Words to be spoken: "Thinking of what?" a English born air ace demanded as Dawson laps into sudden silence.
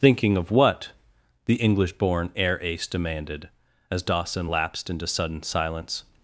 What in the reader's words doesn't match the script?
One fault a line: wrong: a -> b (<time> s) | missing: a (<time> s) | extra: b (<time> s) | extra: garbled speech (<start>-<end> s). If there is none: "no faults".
wrong: a -> the (1.4 s)
wrong: laps -> lapsed (4.5 s)